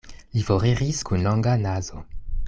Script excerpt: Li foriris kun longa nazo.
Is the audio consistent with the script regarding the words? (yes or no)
yes